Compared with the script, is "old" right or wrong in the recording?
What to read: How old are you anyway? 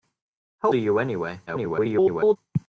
wrong